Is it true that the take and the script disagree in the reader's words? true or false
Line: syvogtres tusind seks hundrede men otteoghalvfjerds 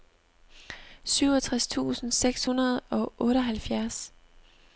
true